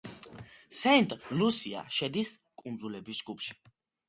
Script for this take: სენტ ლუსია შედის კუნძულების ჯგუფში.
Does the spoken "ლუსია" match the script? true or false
true